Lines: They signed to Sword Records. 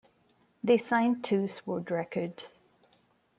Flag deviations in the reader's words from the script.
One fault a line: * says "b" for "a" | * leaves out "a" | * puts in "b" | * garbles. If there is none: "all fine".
all fine